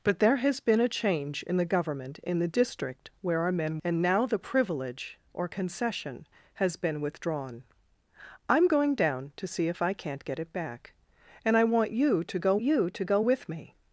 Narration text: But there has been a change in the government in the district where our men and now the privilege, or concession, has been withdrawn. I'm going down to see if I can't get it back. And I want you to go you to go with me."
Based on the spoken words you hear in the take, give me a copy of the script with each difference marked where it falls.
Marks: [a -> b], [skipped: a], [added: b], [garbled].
But there has been a change in the government in the district where our men and now the privilege, or concession, has been withdrawn. I'm going down to see if I can't get it back. And I want you to go you to go with me."